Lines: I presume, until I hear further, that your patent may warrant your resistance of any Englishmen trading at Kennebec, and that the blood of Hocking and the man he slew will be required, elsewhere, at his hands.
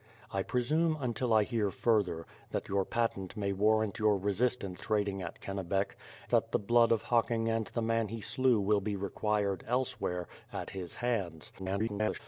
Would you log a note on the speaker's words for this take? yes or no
yes